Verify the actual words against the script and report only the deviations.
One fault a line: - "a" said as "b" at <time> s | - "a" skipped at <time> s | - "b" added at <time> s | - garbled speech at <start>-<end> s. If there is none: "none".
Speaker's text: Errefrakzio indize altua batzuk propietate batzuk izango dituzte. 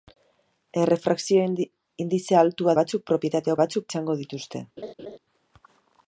none